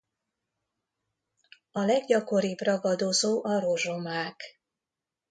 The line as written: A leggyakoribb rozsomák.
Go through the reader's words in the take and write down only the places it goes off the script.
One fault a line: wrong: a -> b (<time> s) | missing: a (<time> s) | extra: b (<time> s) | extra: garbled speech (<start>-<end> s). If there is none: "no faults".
extra: ragadozó a (2.6 s)